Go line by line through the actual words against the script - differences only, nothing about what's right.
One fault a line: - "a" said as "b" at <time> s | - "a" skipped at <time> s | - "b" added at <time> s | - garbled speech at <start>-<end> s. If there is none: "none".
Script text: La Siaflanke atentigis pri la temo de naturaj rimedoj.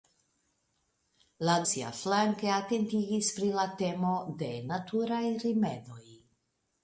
none